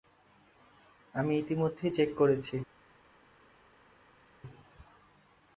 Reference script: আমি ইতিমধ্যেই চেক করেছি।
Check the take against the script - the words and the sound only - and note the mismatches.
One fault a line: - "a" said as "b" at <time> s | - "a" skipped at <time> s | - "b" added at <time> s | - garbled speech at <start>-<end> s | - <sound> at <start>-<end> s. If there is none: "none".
none